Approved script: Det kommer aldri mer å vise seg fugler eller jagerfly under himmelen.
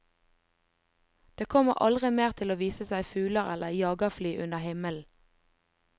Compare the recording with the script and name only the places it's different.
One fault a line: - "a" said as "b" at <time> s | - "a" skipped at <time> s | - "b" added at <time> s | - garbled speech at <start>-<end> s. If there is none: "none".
- "til" added at 2.4 s